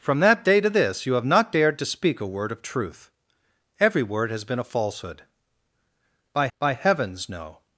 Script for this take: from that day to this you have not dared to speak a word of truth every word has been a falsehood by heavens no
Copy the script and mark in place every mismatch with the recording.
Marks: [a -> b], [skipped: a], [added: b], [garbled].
from that day to this you have not dared to speak a word of truth every word has been a falsehood by [added: by] heavens no